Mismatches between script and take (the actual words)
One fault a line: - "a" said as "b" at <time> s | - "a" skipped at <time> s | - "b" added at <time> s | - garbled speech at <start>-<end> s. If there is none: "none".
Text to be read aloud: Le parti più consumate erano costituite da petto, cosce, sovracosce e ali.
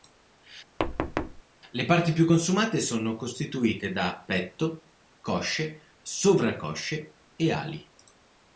- "erano" said as "sono" at 2.8 s